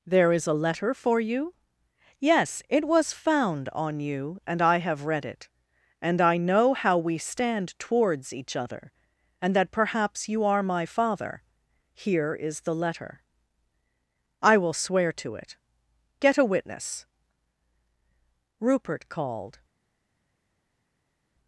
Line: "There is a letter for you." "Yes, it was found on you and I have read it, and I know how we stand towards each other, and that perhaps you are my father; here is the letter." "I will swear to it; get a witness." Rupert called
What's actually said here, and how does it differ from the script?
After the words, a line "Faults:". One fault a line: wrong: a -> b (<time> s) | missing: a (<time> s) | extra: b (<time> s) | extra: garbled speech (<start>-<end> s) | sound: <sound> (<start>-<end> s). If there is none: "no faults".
"There is a letter for you." "Yes, it was found on you and I have read it, and I know how we stand towards each other, and that perhaps you are my father; here is the letter." "I will swear to it; get a witness." Rupert called
Faults:
no faults